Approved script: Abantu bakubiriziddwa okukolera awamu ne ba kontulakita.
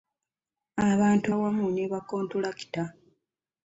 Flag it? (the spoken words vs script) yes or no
yes